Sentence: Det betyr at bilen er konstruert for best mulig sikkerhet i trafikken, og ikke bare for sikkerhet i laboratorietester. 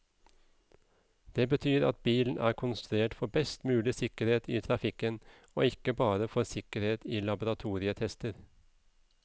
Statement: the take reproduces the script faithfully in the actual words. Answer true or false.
true